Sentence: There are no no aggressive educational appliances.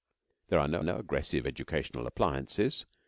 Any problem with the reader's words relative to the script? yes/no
no